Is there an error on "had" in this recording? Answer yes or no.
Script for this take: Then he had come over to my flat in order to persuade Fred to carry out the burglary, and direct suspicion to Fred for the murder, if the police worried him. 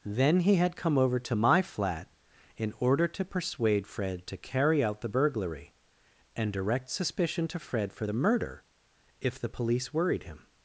no